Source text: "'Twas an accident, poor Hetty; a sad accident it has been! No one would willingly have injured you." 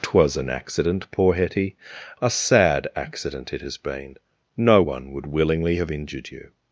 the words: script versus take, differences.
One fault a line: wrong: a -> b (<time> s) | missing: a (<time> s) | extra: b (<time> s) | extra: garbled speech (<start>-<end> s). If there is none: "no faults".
no faults